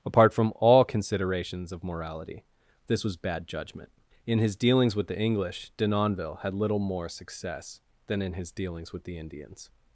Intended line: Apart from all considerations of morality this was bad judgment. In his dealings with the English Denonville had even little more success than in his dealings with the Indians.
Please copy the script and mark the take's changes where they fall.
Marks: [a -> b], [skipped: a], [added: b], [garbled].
Apart from all considerations of morality this was bad judgment. In his dealings with the English Denonville had [skipped: even] little more success than in his dealings with the Indians.